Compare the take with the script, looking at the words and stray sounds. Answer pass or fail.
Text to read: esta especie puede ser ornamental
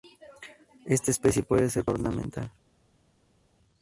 pass